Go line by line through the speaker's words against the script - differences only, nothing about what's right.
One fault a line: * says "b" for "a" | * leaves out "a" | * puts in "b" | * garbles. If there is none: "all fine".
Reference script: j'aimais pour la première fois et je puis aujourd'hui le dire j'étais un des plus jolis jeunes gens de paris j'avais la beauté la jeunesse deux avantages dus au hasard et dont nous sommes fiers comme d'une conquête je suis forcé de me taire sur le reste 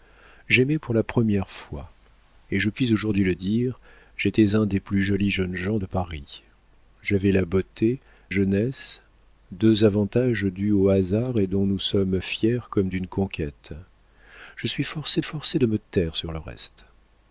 * leaves out "la"
* puts in "forcé"